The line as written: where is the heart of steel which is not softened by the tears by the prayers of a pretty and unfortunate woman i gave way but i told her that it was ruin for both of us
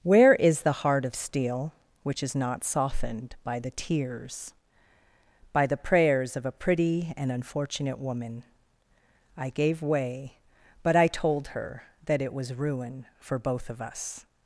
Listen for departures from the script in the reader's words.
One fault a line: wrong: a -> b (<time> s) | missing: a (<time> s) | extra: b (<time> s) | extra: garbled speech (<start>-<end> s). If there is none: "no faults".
no faults